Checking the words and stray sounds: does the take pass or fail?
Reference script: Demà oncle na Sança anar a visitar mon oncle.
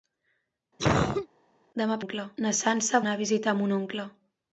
fail